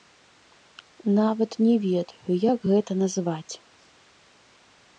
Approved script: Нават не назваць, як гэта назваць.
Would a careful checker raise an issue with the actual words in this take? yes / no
yes